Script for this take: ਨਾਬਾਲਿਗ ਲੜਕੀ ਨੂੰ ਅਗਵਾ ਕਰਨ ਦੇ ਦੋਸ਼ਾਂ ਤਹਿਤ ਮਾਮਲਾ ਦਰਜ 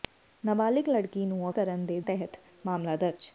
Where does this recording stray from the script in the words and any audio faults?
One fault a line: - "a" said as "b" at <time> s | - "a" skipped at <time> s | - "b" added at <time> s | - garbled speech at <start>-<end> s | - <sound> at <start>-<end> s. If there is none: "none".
- "ਅਗਵਾ" skipped at 1.5 s
- "ਦੋਸ਼ਾਂ" skipped at 2.0 s